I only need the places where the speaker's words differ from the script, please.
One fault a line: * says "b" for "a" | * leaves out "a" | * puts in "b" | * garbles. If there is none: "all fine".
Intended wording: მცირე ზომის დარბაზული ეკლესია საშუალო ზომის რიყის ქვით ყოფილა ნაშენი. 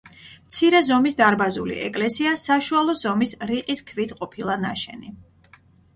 all fine